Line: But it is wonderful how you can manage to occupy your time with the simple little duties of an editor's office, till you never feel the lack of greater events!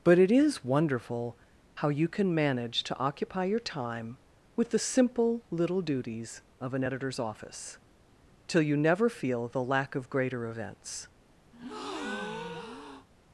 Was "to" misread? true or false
false